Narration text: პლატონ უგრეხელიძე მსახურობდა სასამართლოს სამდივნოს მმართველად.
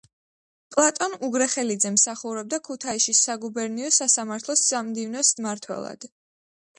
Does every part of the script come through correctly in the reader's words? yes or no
no